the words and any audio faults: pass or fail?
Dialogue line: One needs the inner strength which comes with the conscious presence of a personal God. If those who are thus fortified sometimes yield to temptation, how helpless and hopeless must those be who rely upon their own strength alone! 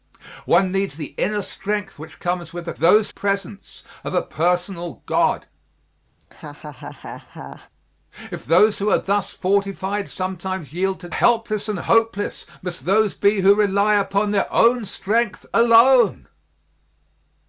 fail